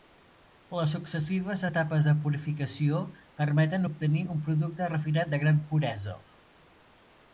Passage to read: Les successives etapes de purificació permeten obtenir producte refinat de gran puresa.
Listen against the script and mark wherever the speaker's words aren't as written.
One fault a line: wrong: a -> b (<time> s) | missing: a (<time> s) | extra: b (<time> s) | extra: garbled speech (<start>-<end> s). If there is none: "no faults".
extra: un (4.4 s)